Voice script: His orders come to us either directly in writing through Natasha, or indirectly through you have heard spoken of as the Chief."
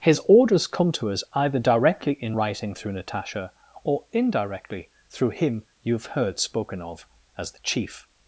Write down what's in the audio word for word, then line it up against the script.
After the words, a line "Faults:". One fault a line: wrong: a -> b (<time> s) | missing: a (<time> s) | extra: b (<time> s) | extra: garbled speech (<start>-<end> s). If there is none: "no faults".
His orders come to us either directly in writing through Natasha, or indirectly through him you have heard spoken of as the Chief."
Faults:
extra: him (5.3 s)